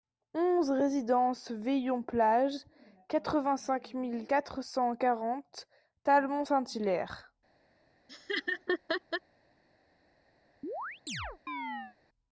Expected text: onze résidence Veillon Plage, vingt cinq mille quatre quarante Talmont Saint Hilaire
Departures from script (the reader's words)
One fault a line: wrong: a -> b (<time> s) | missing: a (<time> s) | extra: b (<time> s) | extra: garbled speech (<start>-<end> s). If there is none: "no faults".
extra: quatre (3.1 s)
extra: cent (4.6 s)